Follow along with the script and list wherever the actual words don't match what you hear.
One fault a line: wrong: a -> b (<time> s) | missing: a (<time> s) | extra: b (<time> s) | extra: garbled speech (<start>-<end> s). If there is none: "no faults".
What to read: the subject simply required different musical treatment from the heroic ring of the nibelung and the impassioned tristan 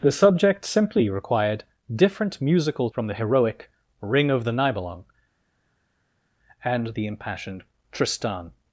missing: treatment (2.9 s)